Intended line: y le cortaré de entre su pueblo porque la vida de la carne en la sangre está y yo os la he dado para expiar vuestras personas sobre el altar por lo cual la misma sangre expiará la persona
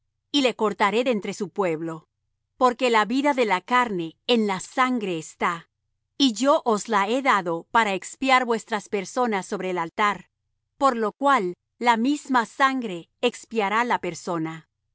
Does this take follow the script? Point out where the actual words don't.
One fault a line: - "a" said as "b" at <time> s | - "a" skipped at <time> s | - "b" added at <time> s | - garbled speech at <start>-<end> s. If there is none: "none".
none